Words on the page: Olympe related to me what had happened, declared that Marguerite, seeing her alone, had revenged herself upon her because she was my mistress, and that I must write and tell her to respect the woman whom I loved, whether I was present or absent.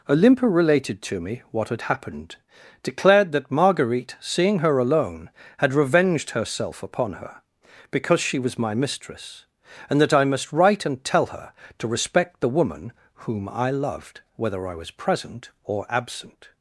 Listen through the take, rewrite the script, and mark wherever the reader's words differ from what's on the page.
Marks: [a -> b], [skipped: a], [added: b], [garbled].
Olympe related to me what had happened, declared that Marguerite, seeing her alone, had revenged herself upon her because she was my mistress, and that I must write and tell her to respect the woman whom I loved, whether I was present or absent.